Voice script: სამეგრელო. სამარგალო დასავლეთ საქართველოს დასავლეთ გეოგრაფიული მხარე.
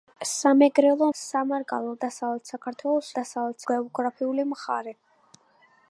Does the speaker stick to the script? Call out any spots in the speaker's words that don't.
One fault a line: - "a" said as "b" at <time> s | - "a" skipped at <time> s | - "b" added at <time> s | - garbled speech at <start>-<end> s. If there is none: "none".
none